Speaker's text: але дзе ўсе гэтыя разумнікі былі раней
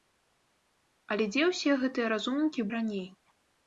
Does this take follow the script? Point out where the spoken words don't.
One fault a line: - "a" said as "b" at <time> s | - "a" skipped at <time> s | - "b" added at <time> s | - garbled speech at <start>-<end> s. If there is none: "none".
- "былі" skipped at 2.6 s